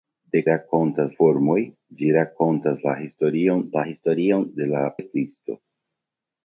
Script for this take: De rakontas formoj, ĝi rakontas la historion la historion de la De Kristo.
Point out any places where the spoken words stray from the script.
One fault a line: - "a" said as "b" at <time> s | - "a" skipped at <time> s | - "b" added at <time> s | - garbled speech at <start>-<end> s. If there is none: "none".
none